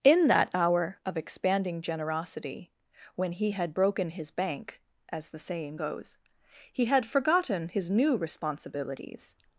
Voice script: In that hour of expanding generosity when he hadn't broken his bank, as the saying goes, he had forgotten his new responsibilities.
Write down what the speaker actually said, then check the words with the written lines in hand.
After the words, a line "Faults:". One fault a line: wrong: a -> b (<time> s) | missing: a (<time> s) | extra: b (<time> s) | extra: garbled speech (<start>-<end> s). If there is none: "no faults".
In that hour of expanding generosity when he had broken his bank, as the saying goes, he had forgotten his new responsibilities.
Faults:
wrong: hadn't -> had (3.5 s)